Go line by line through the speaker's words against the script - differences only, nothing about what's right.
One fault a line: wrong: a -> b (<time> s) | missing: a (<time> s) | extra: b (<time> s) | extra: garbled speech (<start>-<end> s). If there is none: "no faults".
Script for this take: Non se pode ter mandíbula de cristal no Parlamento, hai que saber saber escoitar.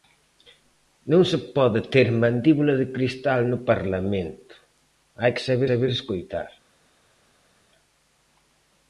no faults